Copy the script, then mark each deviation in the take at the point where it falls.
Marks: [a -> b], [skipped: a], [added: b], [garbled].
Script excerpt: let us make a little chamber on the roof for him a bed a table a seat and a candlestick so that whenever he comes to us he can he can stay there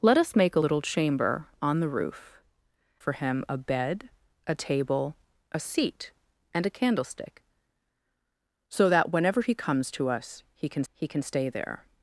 let us make a little chamber on the roof for him a bed a table a seat and a candlestick so that whenever he comes to us he can he can stay there